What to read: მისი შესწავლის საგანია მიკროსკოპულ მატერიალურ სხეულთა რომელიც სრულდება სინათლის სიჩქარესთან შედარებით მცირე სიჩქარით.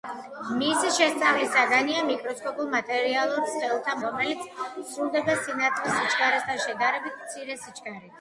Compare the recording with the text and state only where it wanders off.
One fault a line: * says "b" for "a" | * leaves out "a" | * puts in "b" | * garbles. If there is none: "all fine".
all fine